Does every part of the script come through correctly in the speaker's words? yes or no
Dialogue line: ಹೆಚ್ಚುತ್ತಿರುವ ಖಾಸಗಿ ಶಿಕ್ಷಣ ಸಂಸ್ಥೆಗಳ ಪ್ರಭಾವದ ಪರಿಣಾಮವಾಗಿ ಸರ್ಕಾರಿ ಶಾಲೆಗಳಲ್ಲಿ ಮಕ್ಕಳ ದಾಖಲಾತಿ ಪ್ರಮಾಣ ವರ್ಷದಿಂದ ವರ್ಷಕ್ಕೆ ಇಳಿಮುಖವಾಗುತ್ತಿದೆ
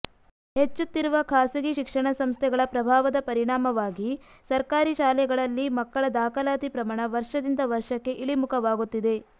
yes